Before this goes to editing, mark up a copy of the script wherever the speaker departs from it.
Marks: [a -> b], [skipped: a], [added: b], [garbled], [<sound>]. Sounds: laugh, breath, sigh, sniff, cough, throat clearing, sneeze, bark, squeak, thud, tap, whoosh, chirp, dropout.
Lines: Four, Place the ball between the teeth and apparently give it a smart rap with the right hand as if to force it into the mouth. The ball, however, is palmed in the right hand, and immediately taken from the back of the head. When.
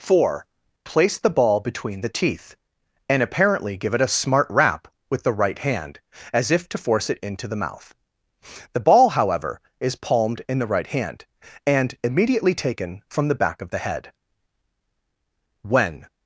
Four, Place the ball between the teeth and apparently give it a smart rap with the right hand as if to force it into the mouth. The ball, however, is palmed in the right hand, and immediately taken from the back of the head. When.